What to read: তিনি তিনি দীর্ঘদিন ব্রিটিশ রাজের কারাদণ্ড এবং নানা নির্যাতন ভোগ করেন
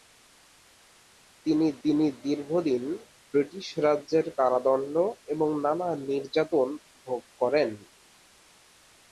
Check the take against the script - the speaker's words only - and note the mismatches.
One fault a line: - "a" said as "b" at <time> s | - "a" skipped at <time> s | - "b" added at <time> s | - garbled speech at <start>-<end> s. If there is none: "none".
none